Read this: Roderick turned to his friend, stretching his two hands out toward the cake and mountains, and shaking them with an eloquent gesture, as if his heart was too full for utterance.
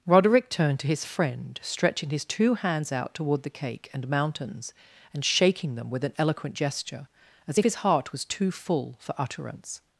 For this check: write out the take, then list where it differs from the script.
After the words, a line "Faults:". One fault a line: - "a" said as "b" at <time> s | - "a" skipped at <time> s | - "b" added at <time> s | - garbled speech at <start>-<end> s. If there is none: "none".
Roderick turned to his friend, stretching his two hands out toward the cake and mountains, and shaking them with an eloquent gesture, as if his heart was too full for utterance.
Faults:
none